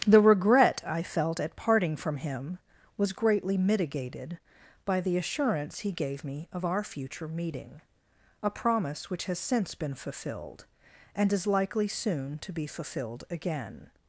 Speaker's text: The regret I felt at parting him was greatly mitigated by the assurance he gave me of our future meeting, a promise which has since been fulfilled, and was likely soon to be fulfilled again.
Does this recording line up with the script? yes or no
no